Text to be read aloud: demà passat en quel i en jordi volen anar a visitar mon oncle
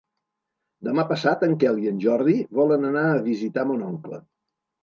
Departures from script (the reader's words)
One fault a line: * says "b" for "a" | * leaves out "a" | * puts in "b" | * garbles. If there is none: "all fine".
all fine